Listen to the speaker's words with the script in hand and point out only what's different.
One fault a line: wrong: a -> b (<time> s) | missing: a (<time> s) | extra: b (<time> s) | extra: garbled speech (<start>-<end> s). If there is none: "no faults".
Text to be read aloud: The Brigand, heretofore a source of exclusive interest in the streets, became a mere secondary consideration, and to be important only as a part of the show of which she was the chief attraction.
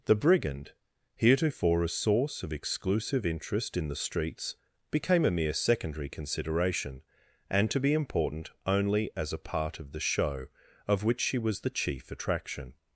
no faults